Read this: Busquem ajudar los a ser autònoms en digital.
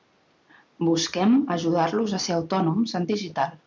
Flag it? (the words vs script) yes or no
no